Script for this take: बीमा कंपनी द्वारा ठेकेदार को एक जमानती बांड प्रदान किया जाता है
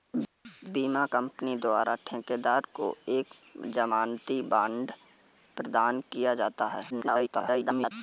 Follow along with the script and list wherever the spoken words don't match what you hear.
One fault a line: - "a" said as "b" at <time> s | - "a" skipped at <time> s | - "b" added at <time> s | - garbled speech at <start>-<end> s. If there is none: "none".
- garbled speech at 6.9-7.9 s